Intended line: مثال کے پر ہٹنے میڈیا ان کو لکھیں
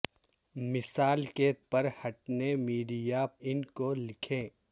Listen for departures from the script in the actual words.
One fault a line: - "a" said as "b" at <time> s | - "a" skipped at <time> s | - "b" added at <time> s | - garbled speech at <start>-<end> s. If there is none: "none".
none